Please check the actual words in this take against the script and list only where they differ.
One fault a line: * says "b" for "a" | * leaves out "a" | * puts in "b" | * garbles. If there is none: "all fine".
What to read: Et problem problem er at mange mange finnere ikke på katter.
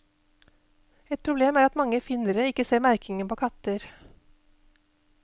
* leaves out "problem"
* leaves out "mange"
* puts in "ser merkingen"